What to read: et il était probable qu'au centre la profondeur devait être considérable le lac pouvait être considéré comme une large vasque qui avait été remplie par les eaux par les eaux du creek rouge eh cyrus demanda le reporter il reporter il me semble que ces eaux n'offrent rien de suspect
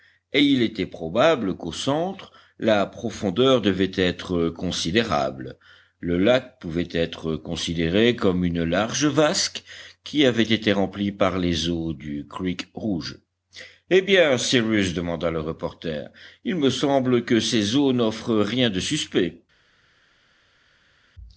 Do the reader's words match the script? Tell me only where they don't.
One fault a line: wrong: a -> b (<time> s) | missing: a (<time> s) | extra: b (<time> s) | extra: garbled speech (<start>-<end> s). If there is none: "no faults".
missing: par les eaux (11.9 s)
extra: bien (14.0 s)
missing: reporter il (16.5 s)